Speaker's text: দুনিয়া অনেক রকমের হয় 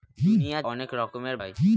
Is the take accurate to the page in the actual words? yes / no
yes